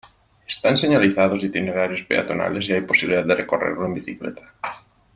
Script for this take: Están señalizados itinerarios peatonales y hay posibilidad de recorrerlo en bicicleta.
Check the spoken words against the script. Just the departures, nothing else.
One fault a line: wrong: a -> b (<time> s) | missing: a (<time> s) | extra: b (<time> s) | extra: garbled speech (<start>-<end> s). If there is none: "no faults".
no faults